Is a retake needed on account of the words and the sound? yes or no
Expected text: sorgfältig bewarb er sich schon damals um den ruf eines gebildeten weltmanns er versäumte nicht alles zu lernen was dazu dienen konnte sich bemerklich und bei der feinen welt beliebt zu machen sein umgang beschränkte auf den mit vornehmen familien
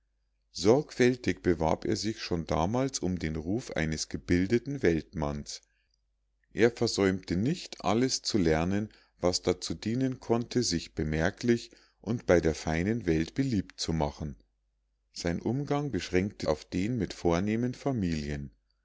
no